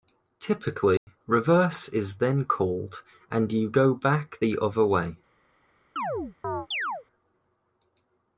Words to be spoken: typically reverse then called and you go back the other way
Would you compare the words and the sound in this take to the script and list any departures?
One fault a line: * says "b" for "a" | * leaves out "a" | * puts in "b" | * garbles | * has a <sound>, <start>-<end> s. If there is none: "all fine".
* has a dropout, 1.0-1.1 s
* puts in "is"
* has a chirp, 6.0-7.0 s